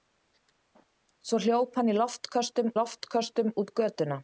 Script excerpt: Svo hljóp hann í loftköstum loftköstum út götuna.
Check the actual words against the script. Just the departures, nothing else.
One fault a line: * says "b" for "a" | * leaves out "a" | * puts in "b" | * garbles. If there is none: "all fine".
all fine